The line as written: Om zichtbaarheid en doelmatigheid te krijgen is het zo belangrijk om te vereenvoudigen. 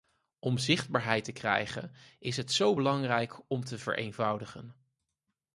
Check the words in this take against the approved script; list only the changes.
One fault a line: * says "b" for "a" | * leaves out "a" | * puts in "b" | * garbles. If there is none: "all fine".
* leaves out "en doelmatigheid"